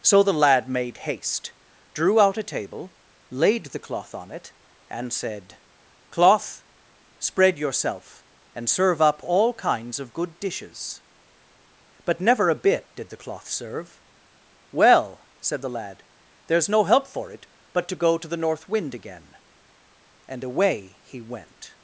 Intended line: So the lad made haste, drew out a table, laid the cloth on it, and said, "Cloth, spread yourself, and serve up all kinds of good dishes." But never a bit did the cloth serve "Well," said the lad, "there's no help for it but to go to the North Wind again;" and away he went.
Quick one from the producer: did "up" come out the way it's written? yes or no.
yes